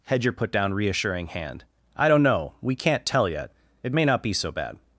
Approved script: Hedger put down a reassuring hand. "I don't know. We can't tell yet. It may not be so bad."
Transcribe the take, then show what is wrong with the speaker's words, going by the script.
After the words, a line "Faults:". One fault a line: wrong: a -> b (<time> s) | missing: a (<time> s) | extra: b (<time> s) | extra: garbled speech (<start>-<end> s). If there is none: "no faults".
Hedger put down reassuring hand. "I don't know. We can't tell yet. It may not be so bad."
Faults:
missing: a (0.7 s)